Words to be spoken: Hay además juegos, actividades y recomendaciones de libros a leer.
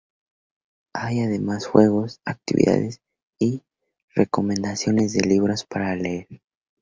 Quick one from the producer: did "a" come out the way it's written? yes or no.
no